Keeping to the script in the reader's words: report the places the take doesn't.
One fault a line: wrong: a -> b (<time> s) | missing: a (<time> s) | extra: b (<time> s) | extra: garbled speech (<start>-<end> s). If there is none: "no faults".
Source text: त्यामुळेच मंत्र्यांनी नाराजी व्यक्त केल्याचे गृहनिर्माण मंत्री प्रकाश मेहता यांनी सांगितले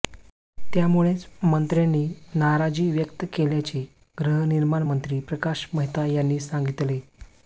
no faults